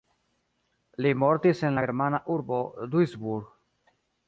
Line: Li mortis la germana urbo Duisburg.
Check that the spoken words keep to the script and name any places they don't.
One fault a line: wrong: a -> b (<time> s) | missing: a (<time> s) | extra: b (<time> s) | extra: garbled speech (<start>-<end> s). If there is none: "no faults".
extra: en (1.7 s)